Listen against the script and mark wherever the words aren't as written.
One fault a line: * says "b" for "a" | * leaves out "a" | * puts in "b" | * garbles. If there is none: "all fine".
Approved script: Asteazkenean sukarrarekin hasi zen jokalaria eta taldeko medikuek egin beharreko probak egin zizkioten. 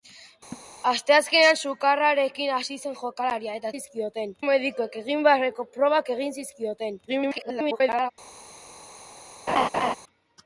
* says "zizkioten" for "taldeko"
* garbles